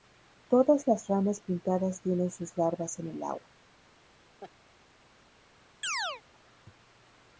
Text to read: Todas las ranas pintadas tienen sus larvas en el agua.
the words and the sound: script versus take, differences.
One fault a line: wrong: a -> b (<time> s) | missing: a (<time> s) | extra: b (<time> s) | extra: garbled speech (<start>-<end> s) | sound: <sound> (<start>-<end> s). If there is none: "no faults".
sound: laugh (4.4-4.5 s)
sound: chirp (5.8-6.2 s)